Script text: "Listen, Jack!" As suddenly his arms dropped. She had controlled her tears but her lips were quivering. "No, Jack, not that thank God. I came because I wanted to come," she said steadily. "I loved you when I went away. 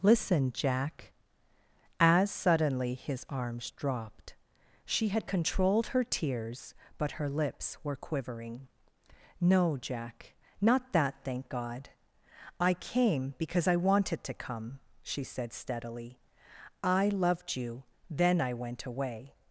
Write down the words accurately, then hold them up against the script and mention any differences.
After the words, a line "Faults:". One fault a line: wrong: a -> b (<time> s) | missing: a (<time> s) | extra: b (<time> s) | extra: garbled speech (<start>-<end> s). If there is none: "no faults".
"Listen, Jack!" As suddenly his arms dropped. She had controlled her tears but her lips were quivering. "No, Jack, not that thank God. I came because I wanted to come," she said steadily. "I loved you then I went away.
Faults:
wrong: when -> then (18.1 s)